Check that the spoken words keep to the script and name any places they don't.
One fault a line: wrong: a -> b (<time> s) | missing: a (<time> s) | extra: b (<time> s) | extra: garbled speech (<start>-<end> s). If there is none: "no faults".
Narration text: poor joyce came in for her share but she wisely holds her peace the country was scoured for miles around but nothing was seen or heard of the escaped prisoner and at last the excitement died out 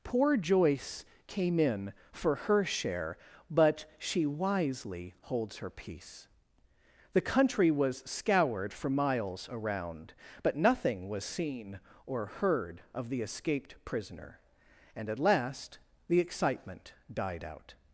no faults